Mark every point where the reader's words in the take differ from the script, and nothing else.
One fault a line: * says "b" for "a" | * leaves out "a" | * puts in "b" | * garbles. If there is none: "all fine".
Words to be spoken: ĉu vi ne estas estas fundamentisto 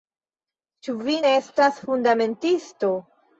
* leaves out "estas"